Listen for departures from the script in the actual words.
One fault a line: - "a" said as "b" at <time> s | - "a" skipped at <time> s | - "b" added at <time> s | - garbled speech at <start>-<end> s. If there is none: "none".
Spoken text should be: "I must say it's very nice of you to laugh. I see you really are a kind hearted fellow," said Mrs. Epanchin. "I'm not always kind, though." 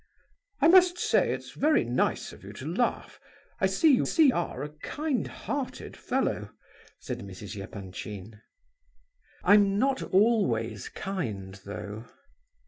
- "really" said as "see" at 4.0 s